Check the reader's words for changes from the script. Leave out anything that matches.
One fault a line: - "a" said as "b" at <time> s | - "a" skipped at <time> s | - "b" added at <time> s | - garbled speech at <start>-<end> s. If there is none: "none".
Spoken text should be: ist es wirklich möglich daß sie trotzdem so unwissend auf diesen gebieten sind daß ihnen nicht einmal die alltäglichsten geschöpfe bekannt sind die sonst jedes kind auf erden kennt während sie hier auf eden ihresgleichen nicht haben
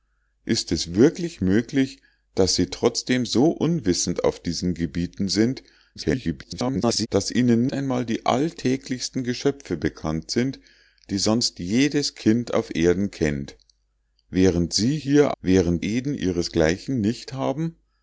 - garbled speech at 6.0-7.1 s
- "nicht" skipped at 7.7 s
- "auf" said as "während" at 15.4 s